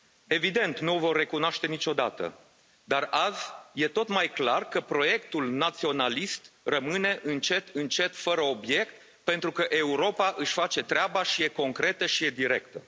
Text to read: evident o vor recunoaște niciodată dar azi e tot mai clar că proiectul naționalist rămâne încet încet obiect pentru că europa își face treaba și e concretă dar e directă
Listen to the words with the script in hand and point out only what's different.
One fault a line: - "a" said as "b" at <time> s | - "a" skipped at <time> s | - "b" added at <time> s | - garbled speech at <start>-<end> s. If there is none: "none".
- "nu" added at 0.8 s
- "fără" added at 8.2 s
- "dar" said as "și" at 12.1 s